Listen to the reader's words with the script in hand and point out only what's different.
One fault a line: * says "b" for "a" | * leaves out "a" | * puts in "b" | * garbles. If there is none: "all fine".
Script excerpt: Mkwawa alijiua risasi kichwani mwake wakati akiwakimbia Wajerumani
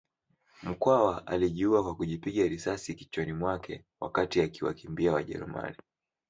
* puts in "kwa kujipiga"